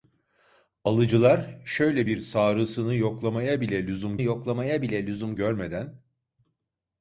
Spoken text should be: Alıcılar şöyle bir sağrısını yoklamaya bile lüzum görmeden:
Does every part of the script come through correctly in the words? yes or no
no